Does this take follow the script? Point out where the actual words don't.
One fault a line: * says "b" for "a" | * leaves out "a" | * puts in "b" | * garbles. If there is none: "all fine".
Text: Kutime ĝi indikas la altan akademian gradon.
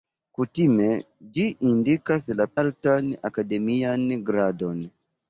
all fine